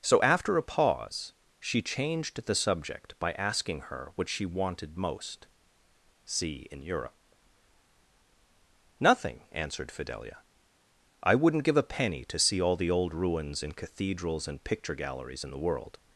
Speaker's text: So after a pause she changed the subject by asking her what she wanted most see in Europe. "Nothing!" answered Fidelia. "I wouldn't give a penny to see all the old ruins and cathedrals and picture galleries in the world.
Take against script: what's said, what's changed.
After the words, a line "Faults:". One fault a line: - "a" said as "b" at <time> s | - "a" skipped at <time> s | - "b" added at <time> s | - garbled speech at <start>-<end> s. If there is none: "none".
So after a pause she changed the subject by asking her what she wanted most see in Europe. "Nothing!" answered Fidelia. "I wouldn't give a penny to see all the old ruins and cathedrals and picture galleries in the world.
Faults:
none